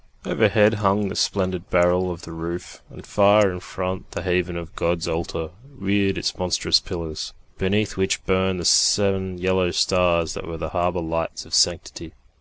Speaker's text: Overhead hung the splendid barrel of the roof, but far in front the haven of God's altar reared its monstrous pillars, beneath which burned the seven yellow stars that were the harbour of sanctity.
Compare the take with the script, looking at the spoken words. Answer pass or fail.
fail